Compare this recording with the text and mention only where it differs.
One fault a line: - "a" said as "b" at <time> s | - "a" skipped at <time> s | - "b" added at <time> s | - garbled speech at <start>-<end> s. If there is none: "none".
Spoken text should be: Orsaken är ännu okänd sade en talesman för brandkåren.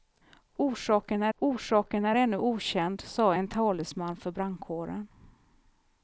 - "orsaken är" added at 1.4 s